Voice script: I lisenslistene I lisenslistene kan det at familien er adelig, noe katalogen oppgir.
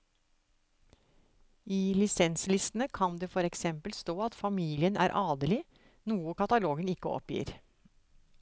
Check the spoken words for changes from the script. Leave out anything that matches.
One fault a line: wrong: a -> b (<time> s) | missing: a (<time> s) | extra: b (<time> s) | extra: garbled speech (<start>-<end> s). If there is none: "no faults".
wrong: I lisenslistene kan det -> kan det for eksempel stå (3.0 s)
extra: ikke (7.0 s)